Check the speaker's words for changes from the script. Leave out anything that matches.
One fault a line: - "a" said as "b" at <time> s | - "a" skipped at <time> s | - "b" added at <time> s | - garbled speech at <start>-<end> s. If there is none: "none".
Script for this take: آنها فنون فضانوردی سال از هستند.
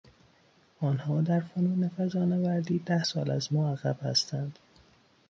- "در" added at 1.2 s
- "ده" added at 2.8 s
- "ما عقب" added at 3.5 s